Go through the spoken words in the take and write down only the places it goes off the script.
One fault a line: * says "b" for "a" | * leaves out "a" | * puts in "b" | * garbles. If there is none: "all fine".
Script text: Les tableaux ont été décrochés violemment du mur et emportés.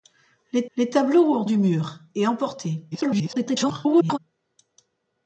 * puts in "les"
* leaves out "été décrochés violemment"
* garbles